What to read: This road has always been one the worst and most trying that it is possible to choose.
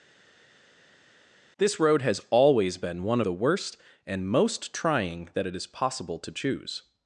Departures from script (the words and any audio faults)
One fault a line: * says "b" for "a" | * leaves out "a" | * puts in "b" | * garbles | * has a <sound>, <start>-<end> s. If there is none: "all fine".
all fine